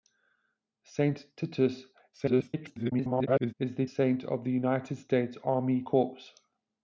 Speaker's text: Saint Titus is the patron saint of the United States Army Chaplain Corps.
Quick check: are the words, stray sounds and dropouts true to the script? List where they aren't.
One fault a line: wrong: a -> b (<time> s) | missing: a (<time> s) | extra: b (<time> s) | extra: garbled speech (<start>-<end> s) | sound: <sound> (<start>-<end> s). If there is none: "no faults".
extra: garbled speech (2.1-3.5 s)
missing: patron (3.9 s)
missing: Chaplain (5.8 s)